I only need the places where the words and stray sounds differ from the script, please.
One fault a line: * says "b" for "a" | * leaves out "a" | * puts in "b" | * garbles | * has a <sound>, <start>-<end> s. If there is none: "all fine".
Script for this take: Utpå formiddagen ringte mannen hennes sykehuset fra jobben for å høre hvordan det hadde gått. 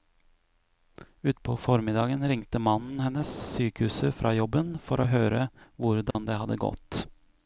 * has a dropout, 6.1-6.1 s